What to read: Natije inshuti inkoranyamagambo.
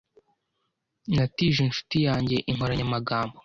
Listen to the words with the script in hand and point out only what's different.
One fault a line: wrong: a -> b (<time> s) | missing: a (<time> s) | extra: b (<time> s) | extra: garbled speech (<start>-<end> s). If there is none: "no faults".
extra: yanjye (2.1 s)